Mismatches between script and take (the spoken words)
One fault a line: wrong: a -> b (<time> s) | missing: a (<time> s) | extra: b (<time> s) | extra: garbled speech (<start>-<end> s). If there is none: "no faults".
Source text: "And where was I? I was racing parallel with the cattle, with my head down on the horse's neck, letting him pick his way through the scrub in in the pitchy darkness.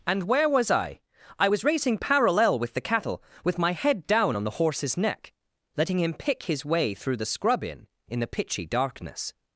no faults